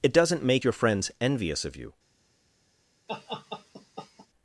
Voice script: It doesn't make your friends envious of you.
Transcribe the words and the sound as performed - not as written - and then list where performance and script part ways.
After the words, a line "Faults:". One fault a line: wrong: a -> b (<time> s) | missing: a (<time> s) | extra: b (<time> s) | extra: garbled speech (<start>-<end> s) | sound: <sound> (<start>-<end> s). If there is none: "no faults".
It doesn't make your friends envious of you.
Faults:
sound: laugh (3.1-4.3 s)